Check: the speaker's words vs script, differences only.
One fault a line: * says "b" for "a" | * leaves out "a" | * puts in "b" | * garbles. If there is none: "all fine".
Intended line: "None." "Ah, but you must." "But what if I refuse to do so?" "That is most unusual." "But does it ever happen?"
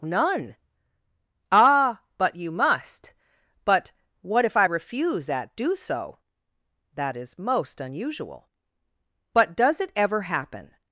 * says "at" for "to"